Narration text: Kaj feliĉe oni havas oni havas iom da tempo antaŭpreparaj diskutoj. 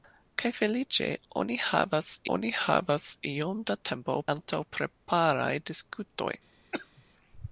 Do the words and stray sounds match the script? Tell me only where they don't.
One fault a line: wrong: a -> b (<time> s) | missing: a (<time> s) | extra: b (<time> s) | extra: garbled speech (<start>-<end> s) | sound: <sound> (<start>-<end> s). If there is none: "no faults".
sound: cough (6.7-7.0 s)